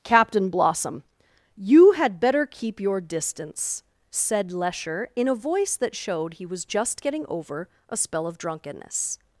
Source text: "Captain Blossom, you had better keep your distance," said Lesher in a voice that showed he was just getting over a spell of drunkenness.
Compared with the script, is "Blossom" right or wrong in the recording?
right